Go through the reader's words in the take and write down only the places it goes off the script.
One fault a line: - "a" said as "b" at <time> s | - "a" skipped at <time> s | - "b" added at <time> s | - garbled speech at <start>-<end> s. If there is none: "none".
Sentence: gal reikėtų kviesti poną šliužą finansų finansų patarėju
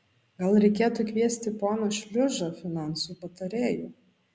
- "finansų" skipped at 3.2 s